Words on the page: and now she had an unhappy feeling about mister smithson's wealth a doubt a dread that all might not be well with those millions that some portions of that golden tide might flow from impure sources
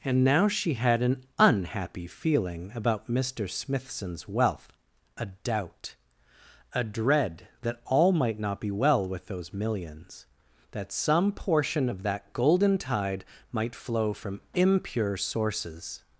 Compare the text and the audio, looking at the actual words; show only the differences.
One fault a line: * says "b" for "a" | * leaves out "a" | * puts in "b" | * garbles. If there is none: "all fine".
* says "portion" for "portions"